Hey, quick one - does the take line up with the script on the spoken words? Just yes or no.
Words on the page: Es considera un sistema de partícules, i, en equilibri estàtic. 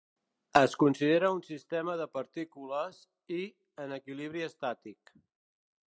yes